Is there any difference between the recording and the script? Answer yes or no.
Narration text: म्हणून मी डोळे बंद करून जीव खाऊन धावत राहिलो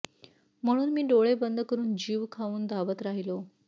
no